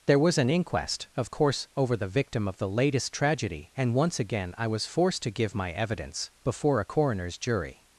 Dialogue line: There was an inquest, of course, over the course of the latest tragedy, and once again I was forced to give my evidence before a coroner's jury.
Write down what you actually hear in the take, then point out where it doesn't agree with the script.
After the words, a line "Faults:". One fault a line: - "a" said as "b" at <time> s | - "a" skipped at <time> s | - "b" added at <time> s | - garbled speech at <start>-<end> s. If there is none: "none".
There was an inquest, of course, over the victim of the latest tragedy, and once again I was forced to give my evidence before a coroner's jury.
Faults:
- "course" said as "victim" at 2.1 s